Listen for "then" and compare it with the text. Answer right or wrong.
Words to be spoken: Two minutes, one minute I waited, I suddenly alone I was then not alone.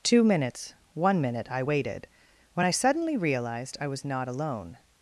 wrong